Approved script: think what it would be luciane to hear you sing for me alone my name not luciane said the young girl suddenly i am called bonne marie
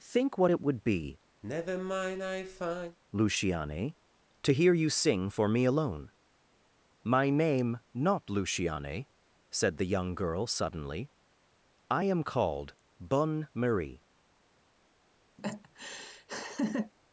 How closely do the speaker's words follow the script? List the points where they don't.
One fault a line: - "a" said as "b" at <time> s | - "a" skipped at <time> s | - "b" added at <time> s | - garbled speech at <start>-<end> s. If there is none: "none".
none